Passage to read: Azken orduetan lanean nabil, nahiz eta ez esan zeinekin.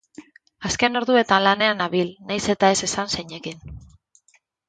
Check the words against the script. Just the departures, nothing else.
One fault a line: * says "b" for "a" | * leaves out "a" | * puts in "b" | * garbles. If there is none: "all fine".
all fine